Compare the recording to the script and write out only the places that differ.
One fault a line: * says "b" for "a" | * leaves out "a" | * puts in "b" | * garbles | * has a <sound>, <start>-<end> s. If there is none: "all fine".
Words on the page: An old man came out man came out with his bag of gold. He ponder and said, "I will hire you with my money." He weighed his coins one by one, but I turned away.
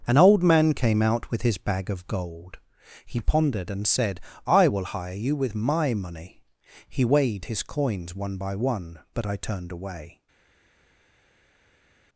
* leaves out "man came out"
* says "pondered" for "ponder"